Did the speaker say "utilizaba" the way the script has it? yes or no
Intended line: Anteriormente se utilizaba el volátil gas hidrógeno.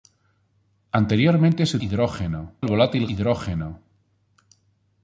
no